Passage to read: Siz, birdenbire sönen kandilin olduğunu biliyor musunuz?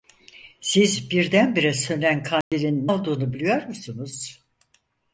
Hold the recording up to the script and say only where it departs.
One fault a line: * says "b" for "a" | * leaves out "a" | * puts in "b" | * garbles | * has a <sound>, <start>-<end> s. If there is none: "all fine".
* has a dropout, 2.4-2.5 s